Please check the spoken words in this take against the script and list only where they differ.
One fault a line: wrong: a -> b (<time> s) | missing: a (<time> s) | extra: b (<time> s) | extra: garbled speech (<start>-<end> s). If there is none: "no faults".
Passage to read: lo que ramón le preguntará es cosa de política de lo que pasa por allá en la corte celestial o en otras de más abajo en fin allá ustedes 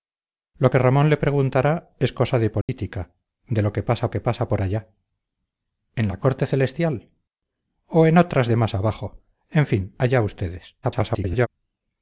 extra: que pasa (4.1 s)
extra: garbled speech (10.8-11.5 s)